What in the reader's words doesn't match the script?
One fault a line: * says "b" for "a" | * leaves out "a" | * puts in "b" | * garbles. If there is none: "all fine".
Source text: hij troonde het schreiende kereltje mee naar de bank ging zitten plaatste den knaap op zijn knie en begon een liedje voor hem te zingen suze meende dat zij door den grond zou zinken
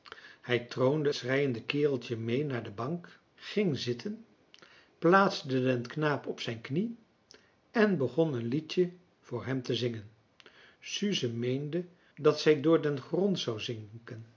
* leaves out "het"